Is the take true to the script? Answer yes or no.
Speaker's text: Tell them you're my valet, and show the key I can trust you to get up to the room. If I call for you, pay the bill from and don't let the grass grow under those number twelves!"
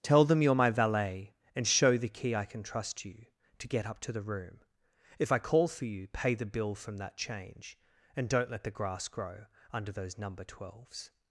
no